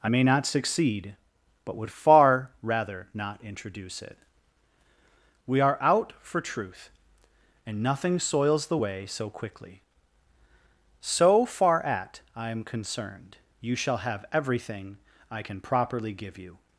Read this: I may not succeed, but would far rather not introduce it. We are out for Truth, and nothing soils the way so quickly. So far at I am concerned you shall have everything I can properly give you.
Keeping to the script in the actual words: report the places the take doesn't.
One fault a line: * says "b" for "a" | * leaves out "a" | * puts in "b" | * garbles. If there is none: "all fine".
all fine